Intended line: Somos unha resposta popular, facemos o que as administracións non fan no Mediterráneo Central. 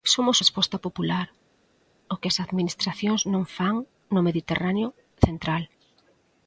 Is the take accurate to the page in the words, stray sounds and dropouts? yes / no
no